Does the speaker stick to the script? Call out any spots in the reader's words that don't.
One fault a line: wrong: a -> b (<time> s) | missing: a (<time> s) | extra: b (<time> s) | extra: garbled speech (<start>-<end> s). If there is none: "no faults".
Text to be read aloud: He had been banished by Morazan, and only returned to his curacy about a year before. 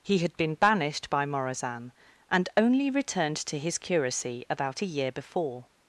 no faults